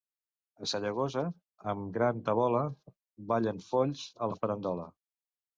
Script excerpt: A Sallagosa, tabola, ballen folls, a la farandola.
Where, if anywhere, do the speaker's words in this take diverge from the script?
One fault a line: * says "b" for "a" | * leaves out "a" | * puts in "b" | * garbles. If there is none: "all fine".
* puts in "amb gran"